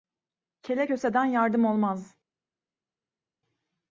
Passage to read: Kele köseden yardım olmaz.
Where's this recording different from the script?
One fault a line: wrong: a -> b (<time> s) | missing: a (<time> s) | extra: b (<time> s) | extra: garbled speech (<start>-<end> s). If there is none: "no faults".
no faults